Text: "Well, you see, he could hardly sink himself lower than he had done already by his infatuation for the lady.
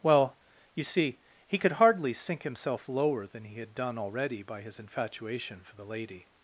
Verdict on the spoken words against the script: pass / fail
pass